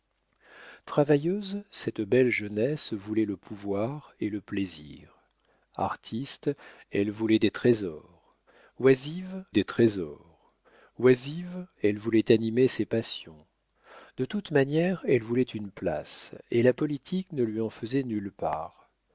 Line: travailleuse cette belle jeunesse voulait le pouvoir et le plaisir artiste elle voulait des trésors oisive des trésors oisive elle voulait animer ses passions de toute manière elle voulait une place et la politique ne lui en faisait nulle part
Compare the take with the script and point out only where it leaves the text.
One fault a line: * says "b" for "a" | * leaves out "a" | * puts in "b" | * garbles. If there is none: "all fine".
all fine